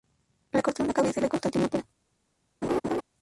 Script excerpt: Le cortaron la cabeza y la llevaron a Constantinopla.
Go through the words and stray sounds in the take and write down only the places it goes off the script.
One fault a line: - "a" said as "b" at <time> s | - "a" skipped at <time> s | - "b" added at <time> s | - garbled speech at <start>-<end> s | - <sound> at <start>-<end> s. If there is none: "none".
- "llevaron" skipped at 1.3 s
- laugh at 2.6-3.0 s